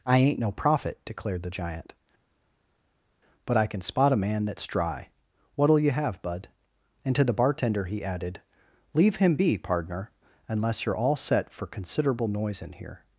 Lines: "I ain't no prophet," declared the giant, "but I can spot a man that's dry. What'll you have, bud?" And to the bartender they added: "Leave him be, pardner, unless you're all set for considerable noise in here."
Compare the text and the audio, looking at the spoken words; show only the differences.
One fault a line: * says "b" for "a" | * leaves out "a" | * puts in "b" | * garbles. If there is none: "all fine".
* says "he" for "they"